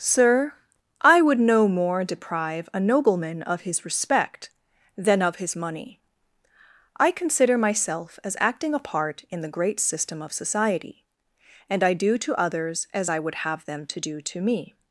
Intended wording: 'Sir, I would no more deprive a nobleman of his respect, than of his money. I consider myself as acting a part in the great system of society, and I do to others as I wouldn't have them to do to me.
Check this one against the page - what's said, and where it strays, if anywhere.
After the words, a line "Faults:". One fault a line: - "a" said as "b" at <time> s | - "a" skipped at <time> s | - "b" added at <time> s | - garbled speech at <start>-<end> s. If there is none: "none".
'Sir, I would no more deprive a nobleman of his respect, than of his money. I consider myself as acting a part in the great system of society, and I do to others as I would have them to do to me.
Faults:
- "wouldn't" said as "would" at 13.2 s